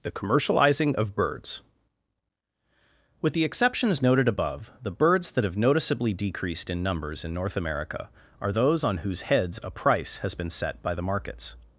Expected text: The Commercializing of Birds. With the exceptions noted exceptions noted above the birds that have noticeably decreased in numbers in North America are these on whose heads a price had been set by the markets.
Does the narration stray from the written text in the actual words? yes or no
yes